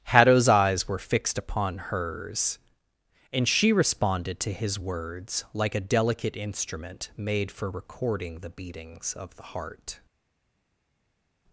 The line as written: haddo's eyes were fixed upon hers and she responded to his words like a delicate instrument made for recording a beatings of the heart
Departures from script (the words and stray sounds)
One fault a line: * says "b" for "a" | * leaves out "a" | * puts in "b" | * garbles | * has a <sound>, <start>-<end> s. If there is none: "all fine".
* says "the" for "a"